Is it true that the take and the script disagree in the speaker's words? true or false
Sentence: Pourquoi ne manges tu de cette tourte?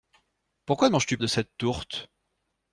false